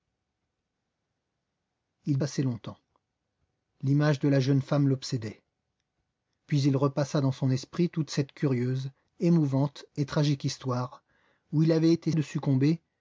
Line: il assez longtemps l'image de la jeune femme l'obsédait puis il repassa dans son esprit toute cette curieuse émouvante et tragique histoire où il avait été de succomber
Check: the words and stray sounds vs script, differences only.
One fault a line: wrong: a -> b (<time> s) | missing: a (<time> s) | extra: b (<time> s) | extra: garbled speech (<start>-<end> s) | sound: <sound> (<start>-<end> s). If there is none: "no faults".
no faults